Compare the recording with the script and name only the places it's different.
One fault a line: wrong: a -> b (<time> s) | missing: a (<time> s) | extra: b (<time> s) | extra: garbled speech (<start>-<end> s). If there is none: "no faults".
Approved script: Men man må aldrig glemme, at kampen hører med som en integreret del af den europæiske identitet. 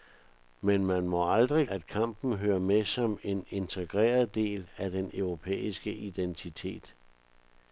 missing: glemme (1.7 s)